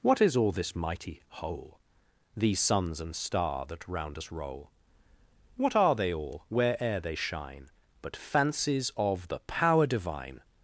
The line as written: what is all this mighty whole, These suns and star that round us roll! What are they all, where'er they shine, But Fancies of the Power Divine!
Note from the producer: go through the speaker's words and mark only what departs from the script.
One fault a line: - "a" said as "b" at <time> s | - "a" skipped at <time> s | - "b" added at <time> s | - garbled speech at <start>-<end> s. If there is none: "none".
none